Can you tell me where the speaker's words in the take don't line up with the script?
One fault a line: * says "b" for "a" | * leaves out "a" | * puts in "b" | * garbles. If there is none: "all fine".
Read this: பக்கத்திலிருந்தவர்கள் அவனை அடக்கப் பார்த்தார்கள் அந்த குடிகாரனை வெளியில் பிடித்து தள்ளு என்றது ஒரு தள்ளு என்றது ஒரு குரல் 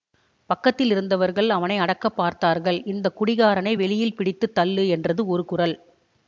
* says "இந்த" for "அந்த"
* leaves out "தள்ளு என்றது ஒரு"